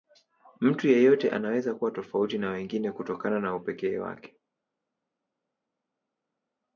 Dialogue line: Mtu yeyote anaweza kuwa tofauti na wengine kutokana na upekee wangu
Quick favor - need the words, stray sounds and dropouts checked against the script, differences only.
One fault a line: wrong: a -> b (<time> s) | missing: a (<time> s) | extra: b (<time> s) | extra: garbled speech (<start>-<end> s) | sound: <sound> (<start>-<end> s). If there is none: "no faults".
wrong: wangu -> wake (4.0 s)